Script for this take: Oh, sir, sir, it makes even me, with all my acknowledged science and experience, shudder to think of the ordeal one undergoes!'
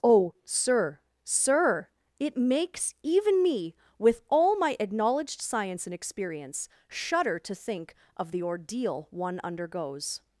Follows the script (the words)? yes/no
yes